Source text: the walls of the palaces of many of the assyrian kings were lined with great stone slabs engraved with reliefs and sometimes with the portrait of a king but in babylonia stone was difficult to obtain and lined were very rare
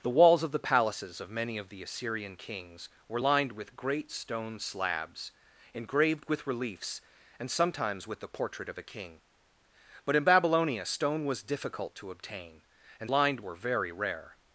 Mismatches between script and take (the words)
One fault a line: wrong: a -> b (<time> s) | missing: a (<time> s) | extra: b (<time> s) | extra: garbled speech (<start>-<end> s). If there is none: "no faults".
no faults